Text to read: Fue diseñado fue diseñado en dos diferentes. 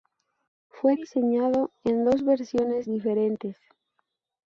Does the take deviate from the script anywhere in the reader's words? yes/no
yes